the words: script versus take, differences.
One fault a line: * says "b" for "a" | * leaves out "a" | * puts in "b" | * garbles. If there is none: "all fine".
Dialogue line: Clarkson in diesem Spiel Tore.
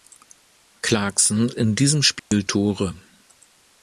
all fine